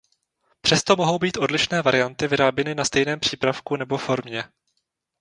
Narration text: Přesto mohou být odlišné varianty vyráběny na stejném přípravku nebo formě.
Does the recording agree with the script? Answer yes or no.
yes